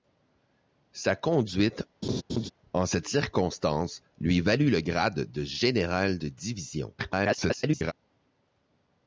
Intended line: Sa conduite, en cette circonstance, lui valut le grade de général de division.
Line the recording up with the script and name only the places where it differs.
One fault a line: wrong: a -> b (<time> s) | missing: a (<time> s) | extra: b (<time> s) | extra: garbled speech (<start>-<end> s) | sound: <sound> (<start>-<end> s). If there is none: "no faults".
sound: laugh (2.0-2.5 s)
extra: garbled speech (7.0-7.9 s)